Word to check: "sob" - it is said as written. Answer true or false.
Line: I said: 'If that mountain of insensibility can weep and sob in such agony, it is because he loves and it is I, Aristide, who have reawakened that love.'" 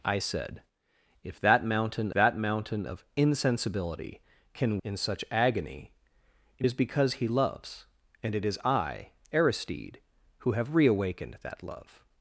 false